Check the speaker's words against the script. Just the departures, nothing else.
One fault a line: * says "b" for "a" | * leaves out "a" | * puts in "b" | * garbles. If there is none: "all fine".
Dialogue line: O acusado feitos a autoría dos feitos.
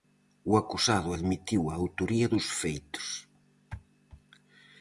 * says "admitiu" for "feitos"